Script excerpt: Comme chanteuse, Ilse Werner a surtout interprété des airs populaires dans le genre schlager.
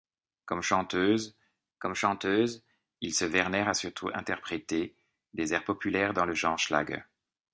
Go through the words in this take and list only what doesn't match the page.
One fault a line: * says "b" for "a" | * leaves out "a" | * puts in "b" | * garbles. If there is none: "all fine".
* puts in "comme chanteuse"